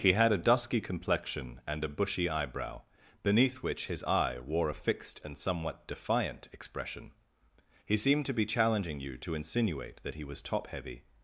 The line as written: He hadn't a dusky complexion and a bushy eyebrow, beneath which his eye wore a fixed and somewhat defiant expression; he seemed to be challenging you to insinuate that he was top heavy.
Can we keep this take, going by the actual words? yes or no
no